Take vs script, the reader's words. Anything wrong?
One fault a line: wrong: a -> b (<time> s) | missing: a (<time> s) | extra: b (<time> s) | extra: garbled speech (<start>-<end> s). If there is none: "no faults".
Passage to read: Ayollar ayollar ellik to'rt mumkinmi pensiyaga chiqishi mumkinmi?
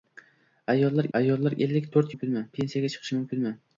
no faults